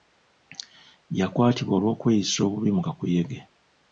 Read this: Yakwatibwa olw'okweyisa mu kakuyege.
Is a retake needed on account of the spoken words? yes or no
yes